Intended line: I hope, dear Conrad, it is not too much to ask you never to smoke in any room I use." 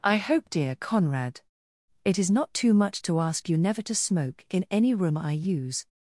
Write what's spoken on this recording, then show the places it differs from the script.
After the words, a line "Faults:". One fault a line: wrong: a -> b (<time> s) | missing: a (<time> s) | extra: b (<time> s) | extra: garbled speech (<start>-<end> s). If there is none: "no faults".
I hope, dear Conrad, it is not too much to ask you never to smoke in any room I use."
Faults:
no faults